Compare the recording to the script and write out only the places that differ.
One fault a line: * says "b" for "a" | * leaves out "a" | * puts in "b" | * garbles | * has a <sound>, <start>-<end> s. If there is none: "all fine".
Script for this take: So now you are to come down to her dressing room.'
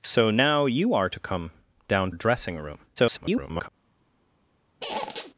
* leaves out "to her"
* garbles
* has a squeak, 4.8-5.3 s